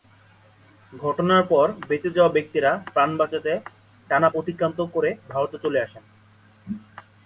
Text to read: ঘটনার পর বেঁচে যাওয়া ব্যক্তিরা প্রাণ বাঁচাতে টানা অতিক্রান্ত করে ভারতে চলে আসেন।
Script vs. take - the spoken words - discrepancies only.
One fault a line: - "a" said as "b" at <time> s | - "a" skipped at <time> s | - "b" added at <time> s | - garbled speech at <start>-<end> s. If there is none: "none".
none